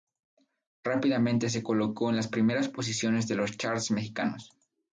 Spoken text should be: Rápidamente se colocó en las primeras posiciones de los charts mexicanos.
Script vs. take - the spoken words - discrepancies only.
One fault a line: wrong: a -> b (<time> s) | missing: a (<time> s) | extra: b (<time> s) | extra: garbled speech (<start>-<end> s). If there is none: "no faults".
no faults